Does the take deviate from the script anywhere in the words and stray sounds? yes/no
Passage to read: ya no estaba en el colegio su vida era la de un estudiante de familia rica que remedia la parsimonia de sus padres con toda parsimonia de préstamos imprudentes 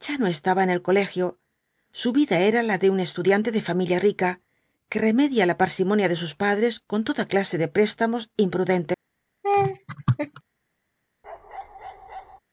yes